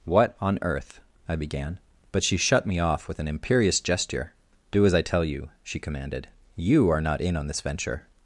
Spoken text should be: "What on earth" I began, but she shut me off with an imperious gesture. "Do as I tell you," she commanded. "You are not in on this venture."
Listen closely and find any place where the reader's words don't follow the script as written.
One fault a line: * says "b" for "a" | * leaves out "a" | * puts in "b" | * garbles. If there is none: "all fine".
all fine